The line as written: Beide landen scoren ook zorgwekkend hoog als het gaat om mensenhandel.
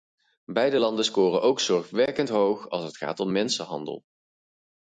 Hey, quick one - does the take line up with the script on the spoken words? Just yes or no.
yes